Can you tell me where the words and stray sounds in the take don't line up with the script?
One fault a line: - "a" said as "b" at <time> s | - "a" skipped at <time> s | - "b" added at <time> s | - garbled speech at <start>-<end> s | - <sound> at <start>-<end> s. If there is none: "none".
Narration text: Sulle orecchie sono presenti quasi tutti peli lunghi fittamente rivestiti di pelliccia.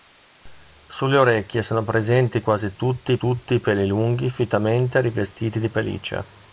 - "tutti" added at 3.2 s